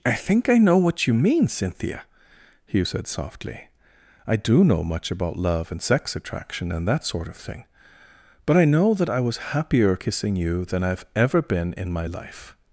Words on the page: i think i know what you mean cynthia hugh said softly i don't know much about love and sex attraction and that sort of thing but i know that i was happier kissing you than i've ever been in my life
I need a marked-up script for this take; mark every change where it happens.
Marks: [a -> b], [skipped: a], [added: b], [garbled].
i think i know what you mean cynthia hugh said softly i [don't -> do] know much about love and sex attraction and that sort of thing but i know that i was happier kissing you than i've ever been in my life